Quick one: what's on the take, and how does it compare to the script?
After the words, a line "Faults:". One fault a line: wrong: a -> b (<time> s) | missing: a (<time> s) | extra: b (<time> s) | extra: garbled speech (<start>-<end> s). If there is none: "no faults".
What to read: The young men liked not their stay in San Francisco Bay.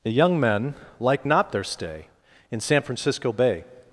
The young men liked not their stay in San Francisco Bay.
Faults:
no faults